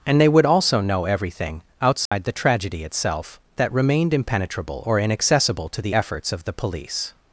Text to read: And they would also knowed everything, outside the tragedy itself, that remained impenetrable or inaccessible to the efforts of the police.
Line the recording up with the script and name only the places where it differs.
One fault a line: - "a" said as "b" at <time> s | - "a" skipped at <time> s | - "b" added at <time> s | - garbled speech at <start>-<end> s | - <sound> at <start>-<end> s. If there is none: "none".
- "knowed" said as "know" at 0.8 s
- dropout at 2.1-2.1 s